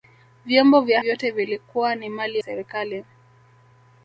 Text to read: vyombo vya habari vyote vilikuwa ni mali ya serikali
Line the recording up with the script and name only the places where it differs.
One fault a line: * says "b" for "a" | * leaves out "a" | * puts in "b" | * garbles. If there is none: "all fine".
* leaves out "habari"
* leaves out "ya"